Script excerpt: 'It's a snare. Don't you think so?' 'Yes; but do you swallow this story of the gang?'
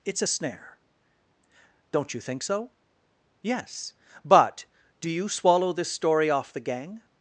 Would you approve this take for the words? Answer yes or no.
no